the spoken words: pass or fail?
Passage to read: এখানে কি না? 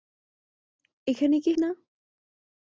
pass